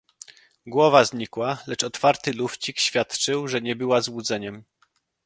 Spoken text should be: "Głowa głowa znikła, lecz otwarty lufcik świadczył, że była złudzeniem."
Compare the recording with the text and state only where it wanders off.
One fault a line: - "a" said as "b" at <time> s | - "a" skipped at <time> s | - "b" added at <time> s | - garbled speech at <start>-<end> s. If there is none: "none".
- "głowa" skipped at 1.1 s
- "nie" added at 3.6 s